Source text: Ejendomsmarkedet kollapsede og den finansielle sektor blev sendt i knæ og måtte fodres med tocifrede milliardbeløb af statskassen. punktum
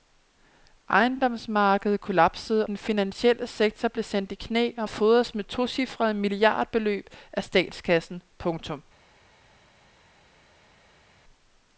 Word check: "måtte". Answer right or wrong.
wrong